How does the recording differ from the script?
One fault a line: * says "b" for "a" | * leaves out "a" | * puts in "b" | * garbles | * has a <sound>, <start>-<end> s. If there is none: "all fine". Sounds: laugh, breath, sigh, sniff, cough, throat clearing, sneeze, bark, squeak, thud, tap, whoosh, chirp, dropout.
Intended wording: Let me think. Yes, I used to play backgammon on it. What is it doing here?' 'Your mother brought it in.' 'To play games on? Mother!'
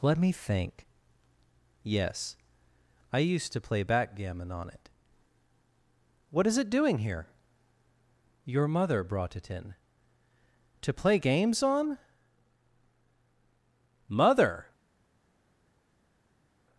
all fine